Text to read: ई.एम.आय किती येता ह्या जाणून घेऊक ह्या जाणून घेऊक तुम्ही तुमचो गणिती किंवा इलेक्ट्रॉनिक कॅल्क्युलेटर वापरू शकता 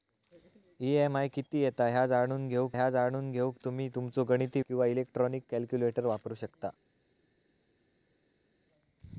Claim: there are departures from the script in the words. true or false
false